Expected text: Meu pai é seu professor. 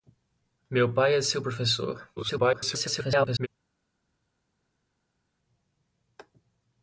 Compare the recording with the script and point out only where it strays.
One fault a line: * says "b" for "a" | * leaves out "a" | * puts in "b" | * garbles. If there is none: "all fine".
* garbles